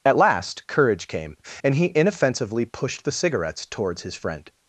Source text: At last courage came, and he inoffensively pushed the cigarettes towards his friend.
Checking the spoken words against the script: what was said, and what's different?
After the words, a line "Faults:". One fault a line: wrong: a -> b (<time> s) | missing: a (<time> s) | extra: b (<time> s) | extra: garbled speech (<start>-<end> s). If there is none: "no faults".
At last courage came, and he inoffensively pushed the cigarettes towards his friend.
Faults:
no faults